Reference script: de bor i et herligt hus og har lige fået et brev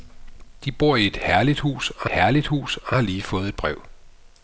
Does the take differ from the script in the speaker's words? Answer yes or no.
yes